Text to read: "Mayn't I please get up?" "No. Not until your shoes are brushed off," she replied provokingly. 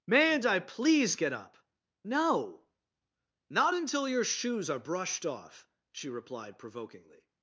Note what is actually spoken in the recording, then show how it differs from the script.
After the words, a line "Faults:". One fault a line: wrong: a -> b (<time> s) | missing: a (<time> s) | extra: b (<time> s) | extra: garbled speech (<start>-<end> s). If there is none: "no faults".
"Mayn't I please get up?" "No. Not until your shoes are brushed off," she replied provokingly.
Faults:
no faults